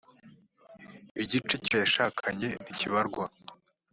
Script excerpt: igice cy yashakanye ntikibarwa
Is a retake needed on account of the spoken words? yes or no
no